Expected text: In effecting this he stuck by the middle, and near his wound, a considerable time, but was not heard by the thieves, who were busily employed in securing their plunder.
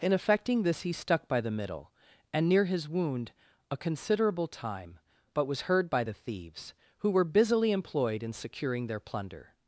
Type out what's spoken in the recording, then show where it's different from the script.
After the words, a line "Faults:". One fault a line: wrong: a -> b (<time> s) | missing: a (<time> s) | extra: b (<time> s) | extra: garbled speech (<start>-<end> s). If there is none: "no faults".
In effecting this he stuck by the middle, and near his wound, a considerable time, but was heard by the thieves, who were busily employed in securing their plunder.
Faults:
missing: not (5.6 s)